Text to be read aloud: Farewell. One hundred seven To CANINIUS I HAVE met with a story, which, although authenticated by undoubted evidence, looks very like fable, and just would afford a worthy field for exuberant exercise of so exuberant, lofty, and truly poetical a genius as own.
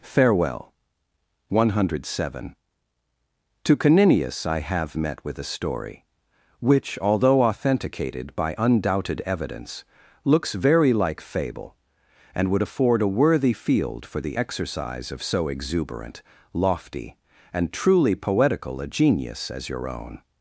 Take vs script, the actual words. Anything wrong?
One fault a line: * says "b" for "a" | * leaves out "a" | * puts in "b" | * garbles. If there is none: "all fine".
* leaves out "just"
* says "the" for "exuberant"
* puts in "your"